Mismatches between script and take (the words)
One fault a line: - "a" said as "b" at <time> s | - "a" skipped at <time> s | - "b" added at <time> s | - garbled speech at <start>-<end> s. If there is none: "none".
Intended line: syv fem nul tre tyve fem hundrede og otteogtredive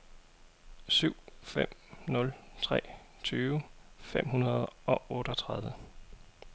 none